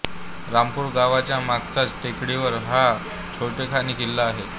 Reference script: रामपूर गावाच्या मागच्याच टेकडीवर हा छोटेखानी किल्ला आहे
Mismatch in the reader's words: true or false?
false